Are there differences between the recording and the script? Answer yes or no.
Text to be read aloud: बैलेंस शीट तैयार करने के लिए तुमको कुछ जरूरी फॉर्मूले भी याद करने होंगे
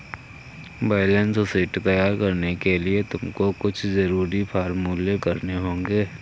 yes